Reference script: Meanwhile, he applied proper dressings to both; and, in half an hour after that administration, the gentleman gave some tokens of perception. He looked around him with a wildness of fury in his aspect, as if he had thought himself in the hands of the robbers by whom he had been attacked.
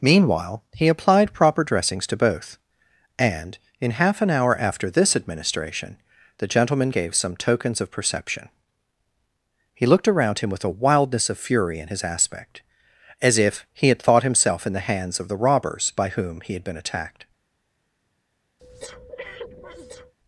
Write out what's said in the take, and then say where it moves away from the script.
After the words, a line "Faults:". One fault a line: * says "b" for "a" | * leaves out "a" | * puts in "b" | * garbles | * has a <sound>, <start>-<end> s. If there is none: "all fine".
Meanwhile, he applied proper dressings to both; and, in half an hour after this administration, the gentleman gave some tokens of perception. He looked around him with a wildness of fury in his aspect, as if he had thought himself in the hands of the robbers by whom he had been attacked.
Faults:
* says "this" for "that"
* has a breath, 18.6-20.1 s